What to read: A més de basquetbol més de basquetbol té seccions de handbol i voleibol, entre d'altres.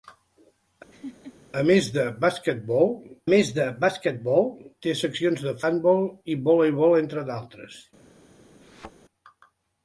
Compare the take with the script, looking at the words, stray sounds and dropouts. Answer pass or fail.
fail